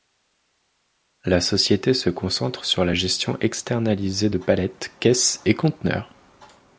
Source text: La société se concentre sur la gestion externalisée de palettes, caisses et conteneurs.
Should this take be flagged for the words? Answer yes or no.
no